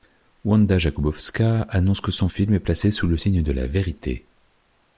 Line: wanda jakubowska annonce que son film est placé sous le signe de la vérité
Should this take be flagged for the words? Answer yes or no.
no